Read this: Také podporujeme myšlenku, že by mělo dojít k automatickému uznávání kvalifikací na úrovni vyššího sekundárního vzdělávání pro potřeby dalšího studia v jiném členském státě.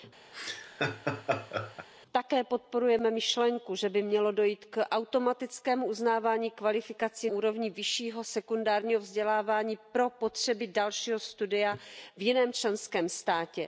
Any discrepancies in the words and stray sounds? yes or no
yes